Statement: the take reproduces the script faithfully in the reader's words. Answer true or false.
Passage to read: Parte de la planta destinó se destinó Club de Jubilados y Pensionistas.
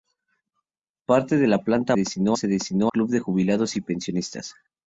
true